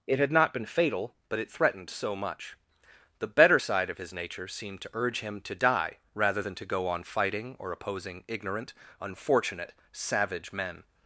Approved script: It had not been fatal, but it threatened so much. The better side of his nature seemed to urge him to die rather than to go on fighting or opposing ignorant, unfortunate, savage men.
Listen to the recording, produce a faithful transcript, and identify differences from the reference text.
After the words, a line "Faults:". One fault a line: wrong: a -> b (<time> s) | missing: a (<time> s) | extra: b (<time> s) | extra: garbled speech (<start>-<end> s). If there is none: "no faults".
It had not been fatal, but it threatened so much. The better side of his nature seemed to urge him to die rather than to go on fighting or opposing ignorant, unfortunate, savage men.
Faults:
no faults